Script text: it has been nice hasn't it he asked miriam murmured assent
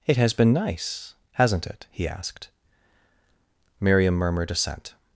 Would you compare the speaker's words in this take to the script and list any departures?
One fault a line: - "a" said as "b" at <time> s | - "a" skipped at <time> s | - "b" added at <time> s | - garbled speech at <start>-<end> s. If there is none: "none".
none